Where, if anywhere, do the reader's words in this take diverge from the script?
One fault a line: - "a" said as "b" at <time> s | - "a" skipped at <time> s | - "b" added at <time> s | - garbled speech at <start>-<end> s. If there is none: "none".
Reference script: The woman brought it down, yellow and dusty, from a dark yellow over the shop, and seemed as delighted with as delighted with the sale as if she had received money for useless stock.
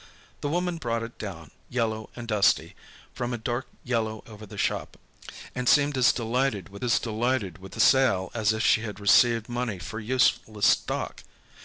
none